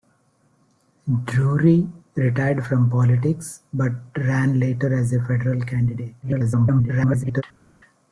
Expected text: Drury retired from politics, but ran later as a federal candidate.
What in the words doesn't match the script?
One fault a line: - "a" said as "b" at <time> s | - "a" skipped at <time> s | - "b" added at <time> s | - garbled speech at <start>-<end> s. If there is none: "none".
- garbled speech at 6.2-7.4 s